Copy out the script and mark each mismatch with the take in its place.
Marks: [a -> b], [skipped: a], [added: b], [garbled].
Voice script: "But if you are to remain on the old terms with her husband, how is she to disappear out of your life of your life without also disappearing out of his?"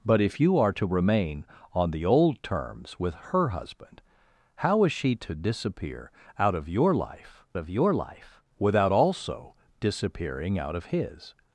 "But if you are to remain on the old terms with her husband, how is she to disappear out of your life of your life without also disappearing out of his?"